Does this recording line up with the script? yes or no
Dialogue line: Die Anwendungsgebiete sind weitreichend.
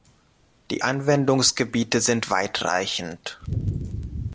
yes